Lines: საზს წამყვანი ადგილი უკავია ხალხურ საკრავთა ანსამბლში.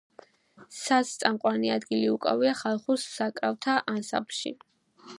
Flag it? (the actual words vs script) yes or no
no